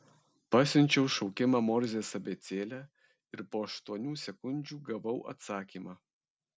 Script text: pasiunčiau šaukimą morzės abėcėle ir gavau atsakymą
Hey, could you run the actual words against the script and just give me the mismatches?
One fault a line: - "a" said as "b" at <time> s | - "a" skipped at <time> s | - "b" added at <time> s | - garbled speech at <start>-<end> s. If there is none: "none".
- "po aštuonių sekundžių" added at 3.5 s